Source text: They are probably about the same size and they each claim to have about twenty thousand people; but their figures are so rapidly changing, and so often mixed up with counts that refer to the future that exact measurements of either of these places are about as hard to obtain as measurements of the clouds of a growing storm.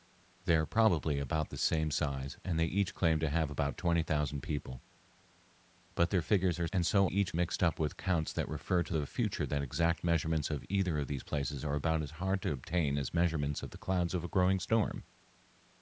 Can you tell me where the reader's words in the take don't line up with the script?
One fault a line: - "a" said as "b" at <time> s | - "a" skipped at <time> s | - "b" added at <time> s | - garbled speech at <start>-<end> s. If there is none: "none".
- "so rapidly changing" skipped at 6.7 s
- "often" said as "each" at 7.0 s